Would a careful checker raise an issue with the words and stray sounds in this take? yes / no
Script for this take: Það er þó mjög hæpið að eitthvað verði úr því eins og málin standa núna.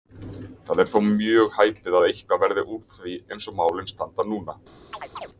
yes